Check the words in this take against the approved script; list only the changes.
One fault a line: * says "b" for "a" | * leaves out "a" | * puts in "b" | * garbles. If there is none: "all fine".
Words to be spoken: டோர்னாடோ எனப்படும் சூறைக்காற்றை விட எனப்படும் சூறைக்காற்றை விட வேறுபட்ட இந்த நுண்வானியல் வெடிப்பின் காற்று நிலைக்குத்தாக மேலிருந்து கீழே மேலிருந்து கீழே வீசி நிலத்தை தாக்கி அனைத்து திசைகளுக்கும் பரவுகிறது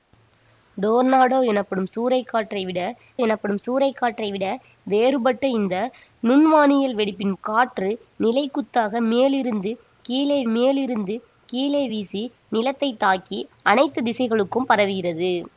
all fine